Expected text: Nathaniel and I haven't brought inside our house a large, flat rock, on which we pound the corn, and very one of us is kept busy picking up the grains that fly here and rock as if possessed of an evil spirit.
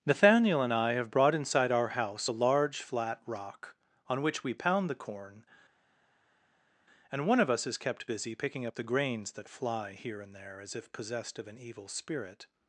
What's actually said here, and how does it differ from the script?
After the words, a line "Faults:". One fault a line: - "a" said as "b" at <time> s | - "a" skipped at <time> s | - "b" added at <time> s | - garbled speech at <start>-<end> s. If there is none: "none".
Nathaniel and I have brought inside our house a large, flat rock, on which we pound the corn, and one of us is kept busy picking up the grains that fly here and there as if possessed of an evil spirit.
Faults:
- "haven't" said as "have" at 0.9 s
- "very" skipped at 7.3 s
- "rock" said as "there" at 10.3 s